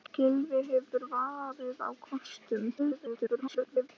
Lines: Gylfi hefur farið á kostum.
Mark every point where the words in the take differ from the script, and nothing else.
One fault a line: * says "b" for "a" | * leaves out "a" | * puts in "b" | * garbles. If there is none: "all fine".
* garbles